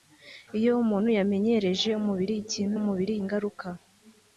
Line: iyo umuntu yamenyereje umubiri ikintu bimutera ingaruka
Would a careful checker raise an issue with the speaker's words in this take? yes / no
yes